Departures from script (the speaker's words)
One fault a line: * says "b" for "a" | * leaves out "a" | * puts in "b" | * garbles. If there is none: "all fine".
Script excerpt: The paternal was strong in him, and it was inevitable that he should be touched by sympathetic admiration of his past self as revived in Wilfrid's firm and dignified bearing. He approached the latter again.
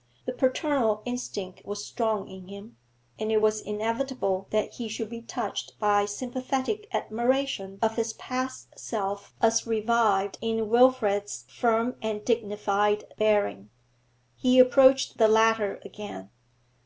* puts in "instinct"